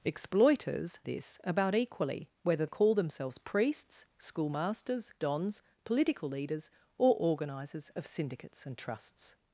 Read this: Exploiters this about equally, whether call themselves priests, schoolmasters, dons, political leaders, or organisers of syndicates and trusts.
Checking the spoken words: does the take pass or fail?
pass